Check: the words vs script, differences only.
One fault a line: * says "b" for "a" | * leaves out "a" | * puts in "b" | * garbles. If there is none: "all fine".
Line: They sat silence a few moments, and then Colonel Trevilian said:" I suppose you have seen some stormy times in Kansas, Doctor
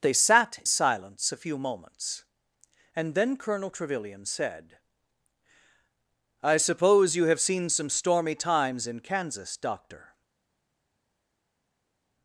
all fine